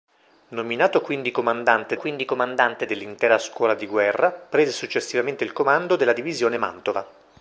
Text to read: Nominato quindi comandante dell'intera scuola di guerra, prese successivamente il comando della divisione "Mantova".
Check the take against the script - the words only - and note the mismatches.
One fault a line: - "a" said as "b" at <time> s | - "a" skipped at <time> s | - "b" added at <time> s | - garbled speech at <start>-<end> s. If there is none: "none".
- "quindi comandante" added at 1.9 s